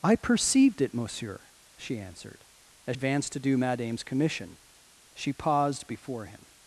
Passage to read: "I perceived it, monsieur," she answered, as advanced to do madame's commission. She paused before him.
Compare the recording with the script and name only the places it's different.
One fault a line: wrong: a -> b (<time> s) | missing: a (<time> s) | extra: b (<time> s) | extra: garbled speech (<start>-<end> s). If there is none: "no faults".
no faults